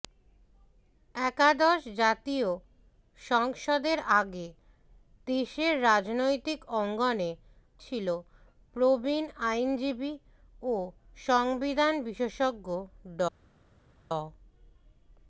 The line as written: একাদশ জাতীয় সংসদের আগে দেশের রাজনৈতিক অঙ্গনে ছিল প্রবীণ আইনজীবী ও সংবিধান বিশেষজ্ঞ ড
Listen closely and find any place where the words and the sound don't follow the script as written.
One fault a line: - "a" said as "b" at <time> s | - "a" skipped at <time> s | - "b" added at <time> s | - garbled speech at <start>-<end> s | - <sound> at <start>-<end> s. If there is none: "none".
none